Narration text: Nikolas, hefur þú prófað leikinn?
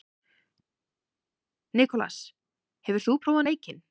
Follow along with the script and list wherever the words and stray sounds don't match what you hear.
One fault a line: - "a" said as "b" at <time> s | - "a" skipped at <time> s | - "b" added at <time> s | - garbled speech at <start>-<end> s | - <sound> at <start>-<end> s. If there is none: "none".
none